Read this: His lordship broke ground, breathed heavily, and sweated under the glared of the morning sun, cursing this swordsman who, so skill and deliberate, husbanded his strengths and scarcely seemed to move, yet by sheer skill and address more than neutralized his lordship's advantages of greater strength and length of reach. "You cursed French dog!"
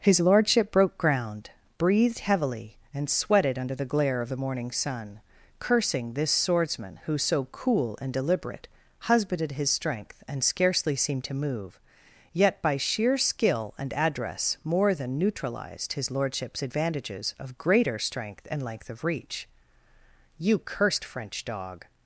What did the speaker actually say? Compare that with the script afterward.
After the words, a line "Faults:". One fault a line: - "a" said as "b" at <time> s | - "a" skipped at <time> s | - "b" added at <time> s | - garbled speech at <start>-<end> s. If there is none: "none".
His lordship broke ground, breathed heavily, and sweated under the glare of the morning sun, cursing this swordsman who, so cool and deliberate, husbanded his strength and scarcely seemed to move, yet by sheer skill and address more than neutralized his lordship's advantages of greater strength and length of reach. "You cursed French dog!"
Faults:
- "glared" said as "glare" at 3.9 s
- "skill" said as "cool" at 7.5 s
- "strengths" said as "strength" at 9.7 s